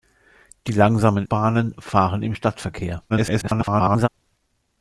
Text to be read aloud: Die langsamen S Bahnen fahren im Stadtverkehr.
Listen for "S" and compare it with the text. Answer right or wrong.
wrong